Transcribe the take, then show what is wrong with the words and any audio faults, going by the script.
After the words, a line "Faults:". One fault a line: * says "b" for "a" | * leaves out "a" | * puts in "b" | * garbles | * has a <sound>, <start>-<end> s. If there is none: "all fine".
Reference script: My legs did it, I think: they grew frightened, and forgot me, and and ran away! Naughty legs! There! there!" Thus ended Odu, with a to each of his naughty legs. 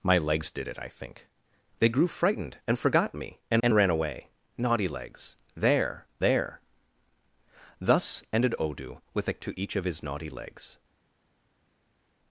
My legs did it, I think: they grew frightened, and forgot me, and and ran away! Naughty legs! There! there!" Thus ended Odu, with a to each of his naughty legs.
Faults:
all fine